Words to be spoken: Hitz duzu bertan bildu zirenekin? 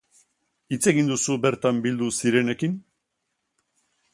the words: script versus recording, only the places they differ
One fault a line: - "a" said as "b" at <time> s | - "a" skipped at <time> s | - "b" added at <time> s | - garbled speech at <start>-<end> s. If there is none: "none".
- "egin" added at 0.9 s